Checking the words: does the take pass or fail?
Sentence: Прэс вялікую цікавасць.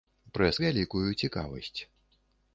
pass